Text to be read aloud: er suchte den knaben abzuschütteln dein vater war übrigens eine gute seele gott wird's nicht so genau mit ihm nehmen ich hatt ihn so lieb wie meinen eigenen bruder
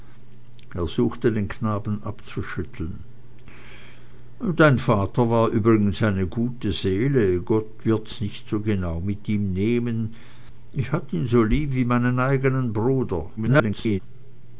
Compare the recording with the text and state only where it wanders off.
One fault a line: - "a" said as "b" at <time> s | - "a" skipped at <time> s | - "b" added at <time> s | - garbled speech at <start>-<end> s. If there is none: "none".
- garbled speech at 13.4-14.0 s